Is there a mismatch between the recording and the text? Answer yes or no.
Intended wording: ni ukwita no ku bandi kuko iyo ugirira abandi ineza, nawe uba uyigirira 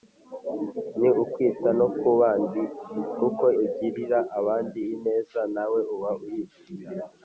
yes